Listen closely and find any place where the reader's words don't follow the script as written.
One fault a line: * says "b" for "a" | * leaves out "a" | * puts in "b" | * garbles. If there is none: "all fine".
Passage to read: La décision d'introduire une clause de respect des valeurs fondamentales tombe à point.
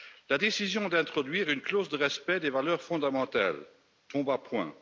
all fine